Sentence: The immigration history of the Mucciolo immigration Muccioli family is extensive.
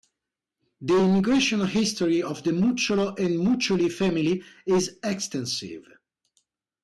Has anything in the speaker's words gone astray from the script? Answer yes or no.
yes